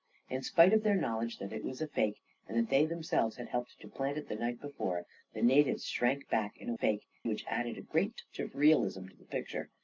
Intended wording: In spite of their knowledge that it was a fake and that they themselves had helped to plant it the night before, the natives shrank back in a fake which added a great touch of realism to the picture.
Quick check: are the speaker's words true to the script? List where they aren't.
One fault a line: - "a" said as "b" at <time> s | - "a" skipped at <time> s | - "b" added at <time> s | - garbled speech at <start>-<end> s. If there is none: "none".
none